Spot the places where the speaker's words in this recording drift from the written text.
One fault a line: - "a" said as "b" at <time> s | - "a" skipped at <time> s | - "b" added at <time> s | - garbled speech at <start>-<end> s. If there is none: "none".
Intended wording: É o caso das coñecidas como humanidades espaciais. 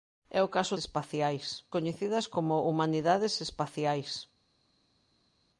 - "das" said as "espaciais" at 0.8 s